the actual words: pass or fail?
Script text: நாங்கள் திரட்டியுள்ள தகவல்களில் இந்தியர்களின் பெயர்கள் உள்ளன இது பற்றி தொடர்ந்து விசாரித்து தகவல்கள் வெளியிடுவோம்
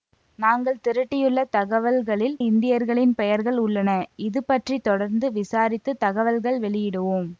pass